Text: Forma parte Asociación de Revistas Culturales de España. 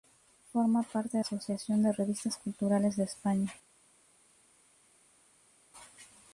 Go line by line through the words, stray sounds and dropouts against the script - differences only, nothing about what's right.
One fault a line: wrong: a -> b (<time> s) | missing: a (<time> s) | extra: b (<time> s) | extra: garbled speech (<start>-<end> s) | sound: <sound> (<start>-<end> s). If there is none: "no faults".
no faults